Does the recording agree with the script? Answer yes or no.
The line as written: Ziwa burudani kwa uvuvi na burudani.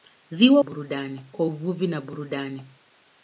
yes